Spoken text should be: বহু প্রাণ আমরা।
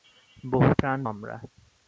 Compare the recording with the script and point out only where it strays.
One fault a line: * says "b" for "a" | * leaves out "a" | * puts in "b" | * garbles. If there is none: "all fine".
all fine